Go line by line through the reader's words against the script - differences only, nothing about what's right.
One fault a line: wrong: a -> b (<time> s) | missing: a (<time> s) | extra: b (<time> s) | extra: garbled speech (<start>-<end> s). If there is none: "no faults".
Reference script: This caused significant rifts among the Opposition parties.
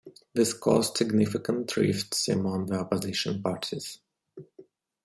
no faults